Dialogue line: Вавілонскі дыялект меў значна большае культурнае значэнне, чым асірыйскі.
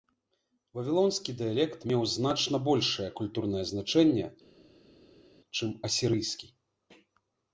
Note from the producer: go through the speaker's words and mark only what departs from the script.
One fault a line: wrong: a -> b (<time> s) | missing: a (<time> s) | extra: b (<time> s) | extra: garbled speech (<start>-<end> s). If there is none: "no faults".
no faults